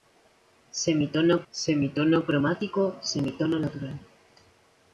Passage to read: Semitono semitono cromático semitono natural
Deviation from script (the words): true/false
false